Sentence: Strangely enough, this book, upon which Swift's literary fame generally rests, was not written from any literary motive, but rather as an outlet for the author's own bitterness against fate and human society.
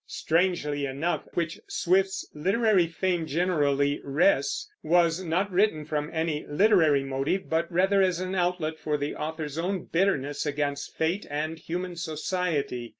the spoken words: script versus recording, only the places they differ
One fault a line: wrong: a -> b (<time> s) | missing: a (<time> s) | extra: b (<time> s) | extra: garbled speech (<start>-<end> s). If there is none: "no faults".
missing: this book upon (1.3 s)